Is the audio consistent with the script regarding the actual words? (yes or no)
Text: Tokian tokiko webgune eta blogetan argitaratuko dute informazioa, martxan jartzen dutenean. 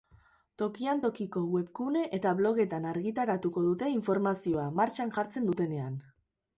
yes